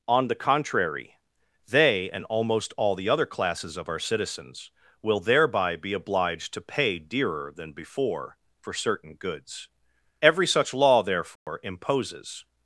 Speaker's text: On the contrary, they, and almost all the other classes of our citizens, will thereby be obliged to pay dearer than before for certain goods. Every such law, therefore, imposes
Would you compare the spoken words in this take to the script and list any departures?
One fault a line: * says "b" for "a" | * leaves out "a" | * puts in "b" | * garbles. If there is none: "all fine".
all fine